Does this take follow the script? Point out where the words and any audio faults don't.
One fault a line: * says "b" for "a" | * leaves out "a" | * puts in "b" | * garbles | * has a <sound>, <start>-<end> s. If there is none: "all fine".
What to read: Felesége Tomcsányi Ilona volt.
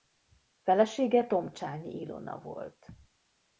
all fine